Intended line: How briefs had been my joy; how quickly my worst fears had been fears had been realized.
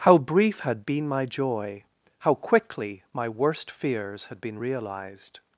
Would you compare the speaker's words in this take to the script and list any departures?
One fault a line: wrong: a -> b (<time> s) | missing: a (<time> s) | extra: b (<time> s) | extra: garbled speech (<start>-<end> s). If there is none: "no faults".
wrong: briefs -> brief (0.2 s)
missing: fears had been (4.6 s)